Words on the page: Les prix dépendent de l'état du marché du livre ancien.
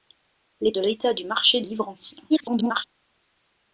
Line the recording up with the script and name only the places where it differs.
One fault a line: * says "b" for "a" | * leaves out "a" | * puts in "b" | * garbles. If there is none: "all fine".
* leaves out "prix dépendent"
* leaves out "du"
* garbles